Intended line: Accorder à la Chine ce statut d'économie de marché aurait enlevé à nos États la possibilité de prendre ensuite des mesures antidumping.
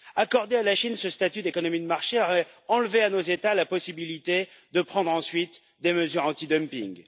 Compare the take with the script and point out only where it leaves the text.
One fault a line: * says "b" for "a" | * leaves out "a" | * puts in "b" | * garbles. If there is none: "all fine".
all fine